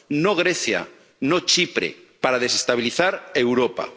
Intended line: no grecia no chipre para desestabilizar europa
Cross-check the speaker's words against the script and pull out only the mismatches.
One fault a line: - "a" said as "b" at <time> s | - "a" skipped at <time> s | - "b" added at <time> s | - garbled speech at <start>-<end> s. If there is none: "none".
none